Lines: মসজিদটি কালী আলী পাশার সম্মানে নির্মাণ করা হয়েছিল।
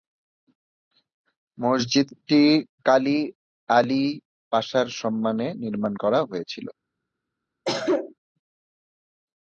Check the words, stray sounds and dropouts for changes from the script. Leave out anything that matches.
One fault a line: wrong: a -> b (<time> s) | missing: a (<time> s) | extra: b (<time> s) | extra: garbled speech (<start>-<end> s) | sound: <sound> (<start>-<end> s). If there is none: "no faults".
sound: cough (7.7-8.1 s)